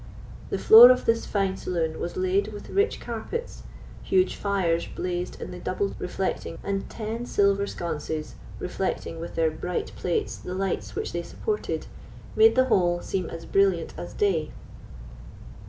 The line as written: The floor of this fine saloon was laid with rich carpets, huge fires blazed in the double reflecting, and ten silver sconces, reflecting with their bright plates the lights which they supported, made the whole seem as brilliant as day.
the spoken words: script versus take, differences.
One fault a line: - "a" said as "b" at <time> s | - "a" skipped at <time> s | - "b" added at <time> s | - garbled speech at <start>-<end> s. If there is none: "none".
none